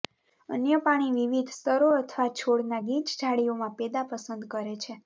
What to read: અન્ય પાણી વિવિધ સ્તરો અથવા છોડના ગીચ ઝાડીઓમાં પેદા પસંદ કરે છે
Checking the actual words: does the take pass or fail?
pass